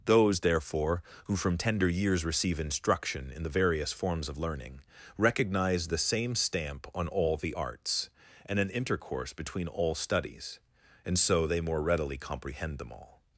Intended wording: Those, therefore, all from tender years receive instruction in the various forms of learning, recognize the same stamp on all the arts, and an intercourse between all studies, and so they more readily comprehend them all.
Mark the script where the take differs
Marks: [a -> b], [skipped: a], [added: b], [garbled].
Those, therefore, [all -> who] from tender years receive instruction in the various forms of learning, recognize the same stamp on all the arts, and an intercourse between all studies, and so they more readily comprehend them all.